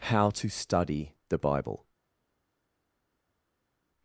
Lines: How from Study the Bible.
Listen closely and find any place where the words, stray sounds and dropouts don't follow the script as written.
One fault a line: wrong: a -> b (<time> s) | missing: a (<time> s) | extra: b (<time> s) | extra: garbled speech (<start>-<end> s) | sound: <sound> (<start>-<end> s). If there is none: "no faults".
wrong: from -> to (0.3 s)